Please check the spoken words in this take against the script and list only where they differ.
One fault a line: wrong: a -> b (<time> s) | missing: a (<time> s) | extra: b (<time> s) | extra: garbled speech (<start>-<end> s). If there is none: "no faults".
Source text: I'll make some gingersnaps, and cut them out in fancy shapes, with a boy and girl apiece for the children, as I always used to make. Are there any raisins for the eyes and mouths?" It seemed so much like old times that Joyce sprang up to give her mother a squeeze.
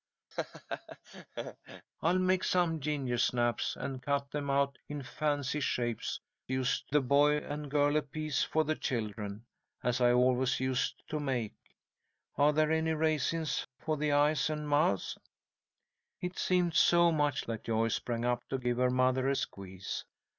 wrong: with -> used (6.5 s)
missing: like old times (17.5 s)